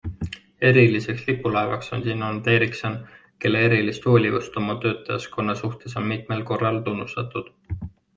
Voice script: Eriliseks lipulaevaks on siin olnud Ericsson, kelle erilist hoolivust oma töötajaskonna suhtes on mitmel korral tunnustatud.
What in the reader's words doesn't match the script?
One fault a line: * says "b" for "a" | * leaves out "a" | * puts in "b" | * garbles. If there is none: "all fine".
all fine